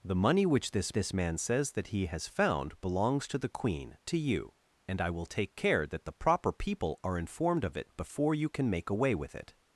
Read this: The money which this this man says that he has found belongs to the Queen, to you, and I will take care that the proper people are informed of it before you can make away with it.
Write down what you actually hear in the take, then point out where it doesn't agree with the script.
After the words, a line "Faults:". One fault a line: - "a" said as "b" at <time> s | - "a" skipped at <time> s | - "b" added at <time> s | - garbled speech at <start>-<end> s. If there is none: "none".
The money which this this man says that he has found belongs to the Queen, to you, and I will take care that the proper people are informed of it before you can make away with it.
Faults:
none